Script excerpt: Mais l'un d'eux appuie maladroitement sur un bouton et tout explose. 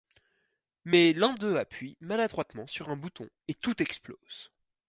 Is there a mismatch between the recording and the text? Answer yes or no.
no